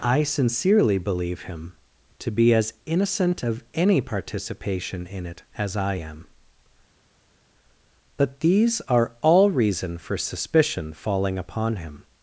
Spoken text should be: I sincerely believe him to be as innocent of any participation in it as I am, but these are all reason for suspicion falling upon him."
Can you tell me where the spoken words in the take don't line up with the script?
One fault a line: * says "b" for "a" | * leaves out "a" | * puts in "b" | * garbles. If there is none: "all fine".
all fine